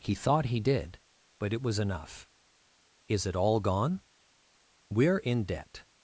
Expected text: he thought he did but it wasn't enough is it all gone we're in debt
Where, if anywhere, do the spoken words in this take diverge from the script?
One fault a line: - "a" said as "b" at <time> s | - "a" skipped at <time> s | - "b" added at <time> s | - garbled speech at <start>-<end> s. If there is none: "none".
- "wasn't" said as "was" at 1.6 s